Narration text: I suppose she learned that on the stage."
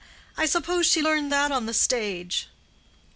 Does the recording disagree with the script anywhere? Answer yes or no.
no